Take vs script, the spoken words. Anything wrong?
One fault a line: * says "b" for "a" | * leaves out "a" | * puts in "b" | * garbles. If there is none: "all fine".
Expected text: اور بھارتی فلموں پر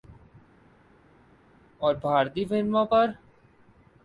all fine